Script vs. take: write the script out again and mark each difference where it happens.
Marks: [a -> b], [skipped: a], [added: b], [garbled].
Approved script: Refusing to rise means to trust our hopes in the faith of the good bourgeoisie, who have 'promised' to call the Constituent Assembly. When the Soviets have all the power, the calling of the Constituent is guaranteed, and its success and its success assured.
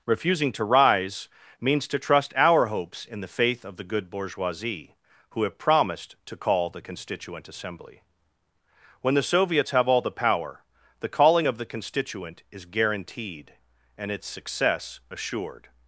Refusing to rise means to trust our hopes in the faith of the good bourgeoisie, who have 'promised' to call the Constituent Assembly. When the Soviets have all the power, the calling of the Constituent is guaranteed, and its success [skipped: and its success] assured.